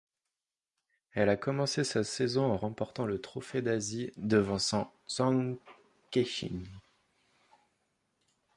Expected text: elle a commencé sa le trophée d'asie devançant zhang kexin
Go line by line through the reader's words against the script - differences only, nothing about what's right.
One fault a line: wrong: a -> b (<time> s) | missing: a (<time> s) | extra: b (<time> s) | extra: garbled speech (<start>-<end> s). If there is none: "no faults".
extra: saison en remportant (2.0 s)